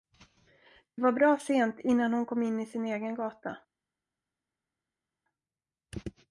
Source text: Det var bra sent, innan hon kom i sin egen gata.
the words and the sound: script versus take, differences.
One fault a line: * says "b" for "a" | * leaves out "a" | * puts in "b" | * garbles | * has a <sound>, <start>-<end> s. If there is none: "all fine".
* puts in "in"